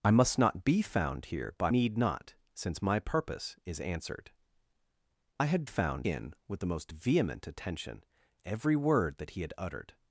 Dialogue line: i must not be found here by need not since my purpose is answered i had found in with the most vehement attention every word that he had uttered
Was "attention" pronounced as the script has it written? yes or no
yes